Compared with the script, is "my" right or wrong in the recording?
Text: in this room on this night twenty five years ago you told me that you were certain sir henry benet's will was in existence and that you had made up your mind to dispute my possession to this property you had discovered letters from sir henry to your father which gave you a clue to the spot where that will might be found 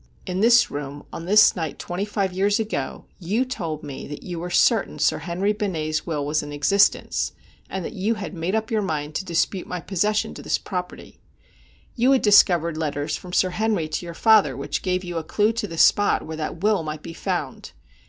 right